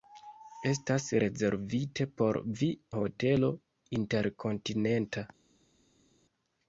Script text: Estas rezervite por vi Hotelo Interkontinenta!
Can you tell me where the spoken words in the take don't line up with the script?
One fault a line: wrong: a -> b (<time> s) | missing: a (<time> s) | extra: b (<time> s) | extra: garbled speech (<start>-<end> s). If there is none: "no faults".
no faults